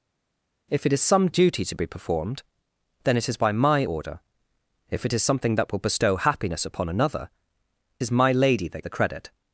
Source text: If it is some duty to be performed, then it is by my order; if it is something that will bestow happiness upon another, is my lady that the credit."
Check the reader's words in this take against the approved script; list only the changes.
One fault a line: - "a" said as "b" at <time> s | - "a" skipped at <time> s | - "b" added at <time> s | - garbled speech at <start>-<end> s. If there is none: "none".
none